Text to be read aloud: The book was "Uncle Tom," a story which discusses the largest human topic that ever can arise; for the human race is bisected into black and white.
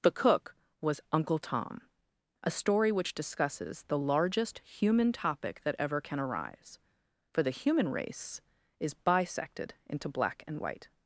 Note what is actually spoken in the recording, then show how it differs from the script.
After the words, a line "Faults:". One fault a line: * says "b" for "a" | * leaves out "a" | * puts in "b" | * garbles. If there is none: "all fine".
The cook was "Uncle Tom," a story which discusses the largest human topic that ever can arise; for the human race is bisected into black and white.
Faults:
* says "cook" for "book"